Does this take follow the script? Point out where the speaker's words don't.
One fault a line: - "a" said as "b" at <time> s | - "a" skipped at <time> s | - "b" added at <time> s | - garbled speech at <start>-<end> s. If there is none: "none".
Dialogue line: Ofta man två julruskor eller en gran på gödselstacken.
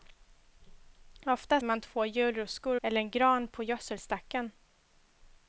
none